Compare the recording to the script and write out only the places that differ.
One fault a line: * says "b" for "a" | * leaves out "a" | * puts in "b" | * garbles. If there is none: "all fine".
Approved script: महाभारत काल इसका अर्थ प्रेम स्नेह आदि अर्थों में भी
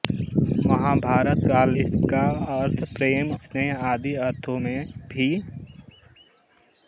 all fine